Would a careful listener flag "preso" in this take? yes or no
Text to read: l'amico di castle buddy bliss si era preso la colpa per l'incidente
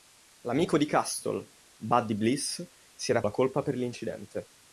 yes